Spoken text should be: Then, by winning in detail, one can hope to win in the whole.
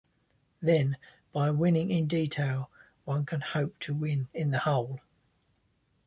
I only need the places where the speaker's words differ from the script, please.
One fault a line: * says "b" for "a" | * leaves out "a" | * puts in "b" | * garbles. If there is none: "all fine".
all fine